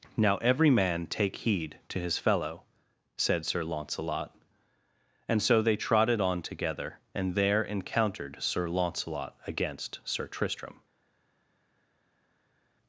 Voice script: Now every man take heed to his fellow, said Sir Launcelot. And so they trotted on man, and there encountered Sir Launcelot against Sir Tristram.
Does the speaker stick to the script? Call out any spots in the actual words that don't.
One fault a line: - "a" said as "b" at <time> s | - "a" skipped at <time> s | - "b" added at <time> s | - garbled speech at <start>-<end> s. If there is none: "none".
- "man" said as "together" at 6.4 s